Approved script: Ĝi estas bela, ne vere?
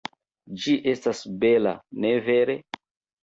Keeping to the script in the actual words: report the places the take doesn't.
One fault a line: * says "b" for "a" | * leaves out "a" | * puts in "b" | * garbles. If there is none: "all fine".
all fine